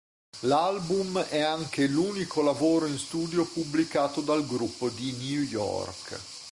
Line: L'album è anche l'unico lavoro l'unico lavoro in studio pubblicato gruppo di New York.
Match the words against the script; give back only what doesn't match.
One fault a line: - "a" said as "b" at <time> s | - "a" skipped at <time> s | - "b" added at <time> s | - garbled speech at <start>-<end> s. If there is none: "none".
- "l'unico lavoro" skipped at 2.9 s
- "dal" added at 4.2 s